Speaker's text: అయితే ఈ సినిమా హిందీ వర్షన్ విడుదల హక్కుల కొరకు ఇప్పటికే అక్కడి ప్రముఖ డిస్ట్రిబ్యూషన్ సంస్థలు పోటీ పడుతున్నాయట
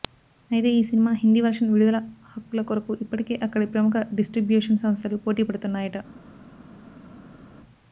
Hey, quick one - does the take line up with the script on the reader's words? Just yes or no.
yes